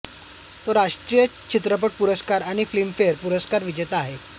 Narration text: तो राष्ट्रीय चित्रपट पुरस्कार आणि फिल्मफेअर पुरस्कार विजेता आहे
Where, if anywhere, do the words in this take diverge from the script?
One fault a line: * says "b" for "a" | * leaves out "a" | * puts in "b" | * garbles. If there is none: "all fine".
all fine